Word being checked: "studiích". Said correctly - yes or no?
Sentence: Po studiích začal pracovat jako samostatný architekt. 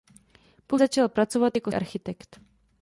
no